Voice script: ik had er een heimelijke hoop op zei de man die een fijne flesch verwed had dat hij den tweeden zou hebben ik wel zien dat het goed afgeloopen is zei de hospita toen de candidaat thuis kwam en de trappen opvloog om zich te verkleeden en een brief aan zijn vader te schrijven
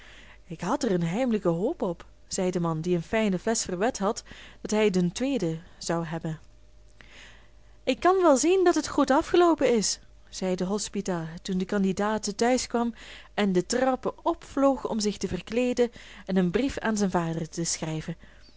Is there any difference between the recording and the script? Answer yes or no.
yes